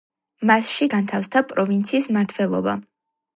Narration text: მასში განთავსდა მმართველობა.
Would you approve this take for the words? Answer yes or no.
no